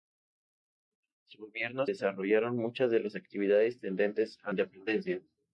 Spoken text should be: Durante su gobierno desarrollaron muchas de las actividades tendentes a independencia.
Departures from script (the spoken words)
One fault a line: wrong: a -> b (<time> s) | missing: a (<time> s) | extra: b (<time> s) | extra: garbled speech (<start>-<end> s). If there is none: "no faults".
no faults